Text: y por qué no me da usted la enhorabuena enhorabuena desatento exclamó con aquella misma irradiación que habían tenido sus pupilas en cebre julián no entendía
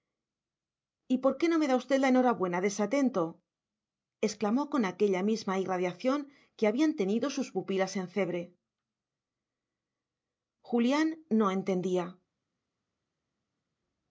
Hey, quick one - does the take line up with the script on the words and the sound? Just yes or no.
no